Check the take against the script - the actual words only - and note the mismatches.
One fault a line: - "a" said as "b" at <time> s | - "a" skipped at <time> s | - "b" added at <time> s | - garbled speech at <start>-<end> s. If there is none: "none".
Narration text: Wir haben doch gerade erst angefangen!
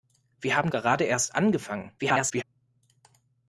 - "doch" skipped at 0.7 s
- garbled speech at 2.0-2.4 s